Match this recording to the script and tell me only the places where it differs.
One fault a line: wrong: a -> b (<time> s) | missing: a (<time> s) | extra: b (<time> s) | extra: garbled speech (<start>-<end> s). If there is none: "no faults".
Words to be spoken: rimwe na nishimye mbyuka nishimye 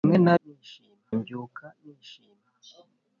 no faults